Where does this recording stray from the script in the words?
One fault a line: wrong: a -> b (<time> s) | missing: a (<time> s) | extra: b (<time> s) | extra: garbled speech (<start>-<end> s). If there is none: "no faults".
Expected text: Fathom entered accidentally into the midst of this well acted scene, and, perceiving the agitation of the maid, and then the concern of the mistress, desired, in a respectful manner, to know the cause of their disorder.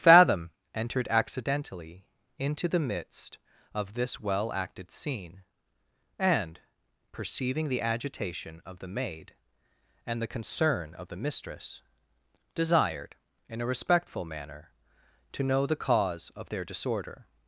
missing: then (10.2 s)